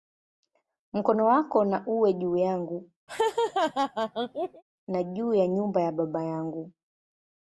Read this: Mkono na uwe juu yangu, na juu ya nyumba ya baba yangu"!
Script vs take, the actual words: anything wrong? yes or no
yes